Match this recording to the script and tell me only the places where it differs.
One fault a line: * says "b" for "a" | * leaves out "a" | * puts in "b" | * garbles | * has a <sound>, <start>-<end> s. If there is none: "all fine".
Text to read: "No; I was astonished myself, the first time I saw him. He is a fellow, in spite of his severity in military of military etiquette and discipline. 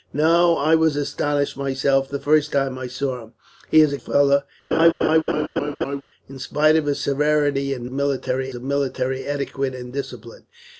* has a laugh, 4.7-6.0 s